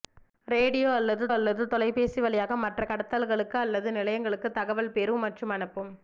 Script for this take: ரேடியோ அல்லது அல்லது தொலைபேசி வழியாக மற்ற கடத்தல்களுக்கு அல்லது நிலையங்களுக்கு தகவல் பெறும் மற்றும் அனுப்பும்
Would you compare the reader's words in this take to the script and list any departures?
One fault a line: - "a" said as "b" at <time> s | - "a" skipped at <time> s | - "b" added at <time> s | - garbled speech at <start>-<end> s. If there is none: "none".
none